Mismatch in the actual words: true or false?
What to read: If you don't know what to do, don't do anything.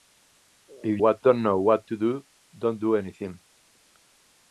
true